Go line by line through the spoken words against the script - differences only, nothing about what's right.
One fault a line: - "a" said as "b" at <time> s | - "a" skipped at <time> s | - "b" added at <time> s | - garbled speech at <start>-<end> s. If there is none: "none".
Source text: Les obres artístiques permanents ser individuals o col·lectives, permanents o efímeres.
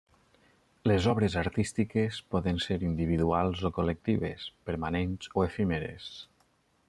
- "permanents" said as "poden" at 2.4 s